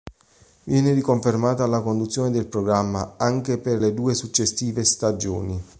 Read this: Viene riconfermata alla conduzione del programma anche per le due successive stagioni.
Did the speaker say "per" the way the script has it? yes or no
yes